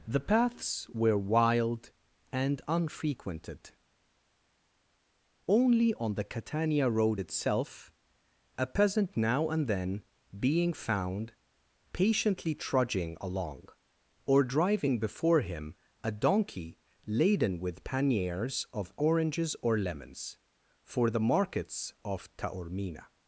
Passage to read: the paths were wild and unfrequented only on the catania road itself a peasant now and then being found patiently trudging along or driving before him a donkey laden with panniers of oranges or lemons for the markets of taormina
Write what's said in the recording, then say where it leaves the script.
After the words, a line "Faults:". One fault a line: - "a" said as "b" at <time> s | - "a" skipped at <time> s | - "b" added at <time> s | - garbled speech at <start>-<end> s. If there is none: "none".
the paths were wild and unfrequented only on the catania road itself a peasant now and then being found patiently trudging along or driving before him a donkey laden with panniers of oranges or lemons for the markets of taormina
Faults:
none